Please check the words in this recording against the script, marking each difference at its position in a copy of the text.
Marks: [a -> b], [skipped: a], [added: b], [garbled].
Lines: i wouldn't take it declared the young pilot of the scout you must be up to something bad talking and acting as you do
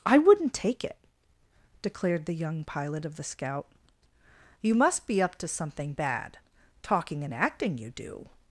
i wouldn't take it declared the young pilot of the scout you must be up to something bad talking and acting [skipped: as] you do